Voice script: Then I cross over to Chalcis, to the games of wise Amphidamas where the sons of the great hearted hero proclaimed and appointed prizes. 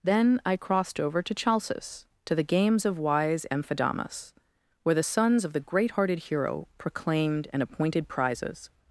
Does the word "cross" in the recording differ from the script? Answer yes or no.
yes